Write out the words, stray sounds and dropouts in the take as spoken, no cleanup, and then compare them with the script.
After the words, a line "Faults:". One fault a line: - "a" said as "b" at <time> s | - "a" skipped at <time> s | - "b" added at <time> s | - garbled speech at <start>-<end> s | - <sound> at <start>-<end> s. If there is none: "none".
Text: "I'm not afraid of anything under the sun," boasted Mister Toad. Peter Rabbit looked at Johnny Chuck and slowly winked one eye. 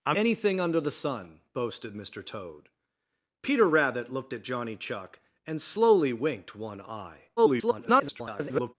"I'm anything under the sun," boasted Mister Toad. Peter Rabbit looked at Johnny Chuck and slowly winked one eye. [garbled]
Faults:
- "not afraid of" skipped at 0.2 s
- garbled speech at 7.4-8.7 s